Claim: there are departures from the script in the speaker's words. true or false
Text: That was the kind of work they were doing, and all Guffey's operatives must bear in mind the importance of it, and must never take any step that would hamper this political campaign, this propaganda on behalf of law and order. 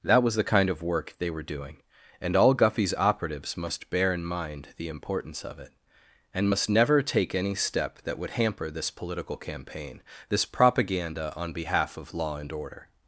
false